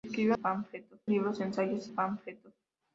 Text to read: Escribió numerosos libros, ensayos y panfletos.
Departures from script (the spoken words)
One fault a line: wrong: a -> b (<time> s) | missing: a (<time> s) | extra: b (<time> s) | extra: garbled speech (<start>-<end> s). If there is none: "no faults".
wrong: numerosos -> panfletos (0.3 s)
missing: y (1.9 s)